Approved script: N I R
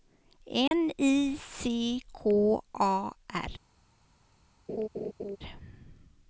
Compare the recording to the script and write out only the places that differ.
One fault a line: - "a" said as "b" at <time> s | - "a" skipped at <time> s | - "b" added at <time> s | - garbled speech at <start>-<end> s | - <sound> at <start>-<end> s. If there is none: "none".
- dropout at 0.7-0.7 s
- "C K A" added at 1.4 s
- laugh at 4.7-5.4 s